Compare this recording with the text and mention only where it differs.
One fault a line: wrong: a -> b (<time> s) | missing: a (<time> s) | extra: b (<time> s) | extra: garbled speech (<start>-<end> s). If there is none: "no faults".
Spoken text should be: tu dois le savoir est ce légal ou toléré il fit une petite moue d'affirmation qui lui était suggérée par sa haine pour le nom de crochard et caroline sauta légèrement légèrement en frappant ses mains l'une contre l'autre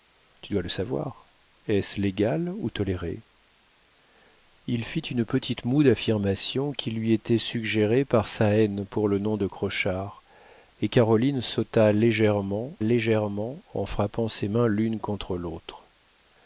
no faults